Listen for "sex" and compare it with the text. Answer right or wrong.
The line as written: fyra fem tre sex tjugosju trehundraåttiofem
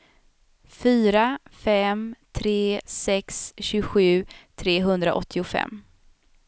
right